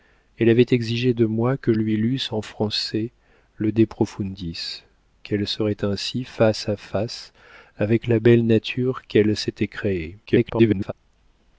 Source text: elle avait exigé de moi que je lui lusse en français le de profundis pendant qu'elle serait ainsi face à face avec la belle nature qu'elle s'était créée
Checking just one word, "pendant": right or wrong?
wrong